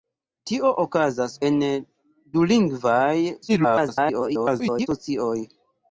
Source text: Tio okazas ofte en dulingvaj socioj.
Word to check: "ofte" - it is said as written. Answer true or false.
false